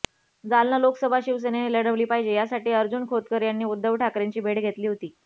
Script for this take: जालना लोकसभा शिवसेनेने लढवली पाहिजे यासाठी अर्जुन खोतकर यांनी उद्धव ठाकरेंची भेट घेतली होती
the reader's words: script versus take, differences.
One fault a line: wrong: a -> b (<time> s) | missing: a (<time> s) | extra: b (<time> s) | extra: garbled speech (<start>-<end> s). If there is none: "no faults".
no faults